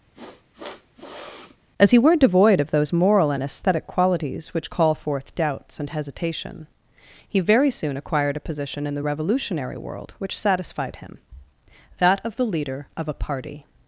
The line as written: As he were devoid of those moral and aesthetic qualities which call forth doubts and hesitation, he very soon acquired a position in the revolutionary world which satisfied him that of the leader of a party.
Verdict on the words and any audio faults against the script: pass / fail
fail